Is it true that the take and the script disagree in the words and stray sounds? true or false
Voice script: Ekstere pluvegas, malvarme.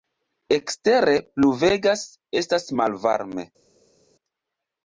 true